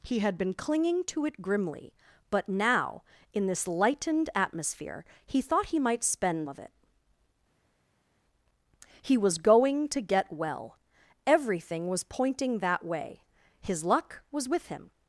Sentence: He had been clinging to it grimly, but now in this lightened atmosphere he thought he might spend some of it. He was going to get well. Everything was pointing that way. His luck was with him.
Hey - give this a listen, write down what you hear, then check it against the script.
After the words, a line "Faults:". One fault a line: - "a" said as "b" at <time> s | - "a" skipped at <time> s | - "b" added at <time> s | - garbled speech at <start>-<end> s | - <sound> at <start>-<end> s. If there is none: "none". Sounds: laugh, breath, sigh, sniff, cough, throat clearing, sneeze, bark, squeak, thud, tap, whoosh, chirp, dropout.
He had been clinging to it grimly, but now in this lightened atmosphere he thought he might spend of it. He was going to get well. Everything was pointing that way. His luck was with him.
Faults:
- "some" skipped at 6.5 s